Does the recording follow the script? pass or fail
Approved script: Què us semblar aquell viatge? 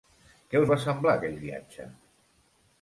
fail